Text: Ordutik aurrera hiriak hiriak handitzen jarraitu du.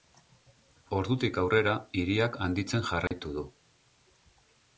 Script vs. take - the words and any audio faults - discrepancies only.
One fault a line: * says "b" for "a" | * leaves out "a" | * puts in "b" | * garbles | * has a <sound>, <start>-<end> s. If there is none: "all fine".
* leaves out "hiriak"
* has a dropout, 3.1-3.1 s